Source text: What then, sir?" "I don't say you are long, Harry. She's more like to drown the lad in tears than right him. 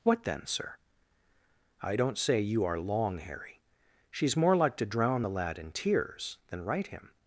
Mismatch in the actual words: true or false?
false